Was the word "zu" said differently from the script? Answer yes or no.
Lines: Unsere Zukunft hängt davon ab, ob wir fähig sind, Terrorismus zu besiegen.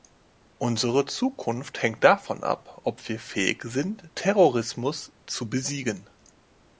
no